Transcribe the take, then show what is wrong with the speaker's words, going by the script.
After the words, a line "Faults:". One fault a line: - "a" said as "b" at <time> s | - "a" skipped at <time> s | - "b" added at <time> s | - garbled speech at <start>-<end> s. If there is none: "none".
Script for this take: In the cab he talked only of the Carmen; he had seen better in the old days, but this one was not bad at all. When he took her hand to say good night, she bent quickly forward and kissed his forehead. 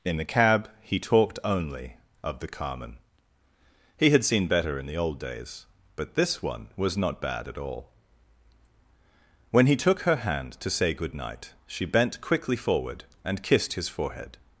In the cab he talked only of the Carmen; he had seen better in the old days, but this one was not bad at all. When he took her hand to say good night, she bent quickly forward and kissed his forehead.
Faults:
none